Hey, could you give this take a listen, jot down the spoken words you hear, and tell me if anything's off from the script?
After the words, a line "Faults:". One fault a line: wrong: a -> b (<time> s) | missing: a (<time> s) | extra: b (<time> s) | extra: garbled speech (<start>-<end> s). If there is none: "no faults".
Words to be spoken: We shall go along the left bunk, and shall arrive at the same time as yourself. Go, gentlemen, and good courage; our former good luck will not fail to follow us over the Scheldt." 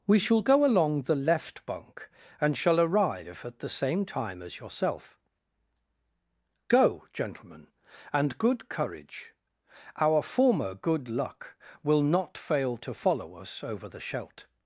We shall go along the left bunk, and shall arrive at the same time as yourself. Go, gentlemen, and good courage; our former good luck will not fail to follow us over the Scheldt."
Faults:
no faults